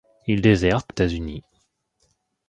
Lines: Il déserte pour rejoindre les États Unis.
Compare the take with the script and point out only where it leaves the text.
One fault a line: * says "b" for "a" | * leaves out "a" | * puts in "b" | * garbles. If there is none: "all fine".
* leaves out "pour rejoindre les"